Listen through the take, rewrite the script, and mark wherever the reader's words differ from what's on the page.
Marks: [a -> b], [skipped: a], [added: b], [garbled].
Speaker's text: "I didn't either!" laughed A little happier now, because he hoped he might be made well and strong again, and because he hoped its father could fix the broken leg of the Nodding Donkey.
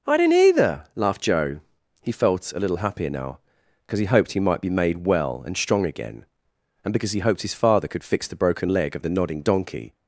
"I didn't either!" laughed [added: Joe He felt] A little happier now, because he hoped he might be made well and strong again, and because he hoped [its -> his] father could fix the broken leg of the Nodding Donkey.